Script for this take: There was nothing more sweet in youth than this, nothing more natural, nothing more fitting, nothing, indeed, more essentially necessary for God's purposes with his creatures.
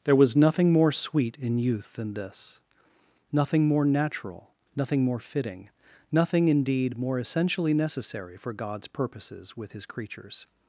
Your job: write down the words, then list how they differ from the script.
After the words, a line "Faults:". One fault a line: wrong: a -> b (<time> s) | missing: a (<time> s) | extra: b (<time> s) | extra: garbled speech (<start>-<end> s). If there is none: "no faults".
There was nothing more sweet in youth than this, nothing more natural, nothing more fitting, nothing, indeed, more essentially necessary for God's purposes with his creatures.
Faults:
no faults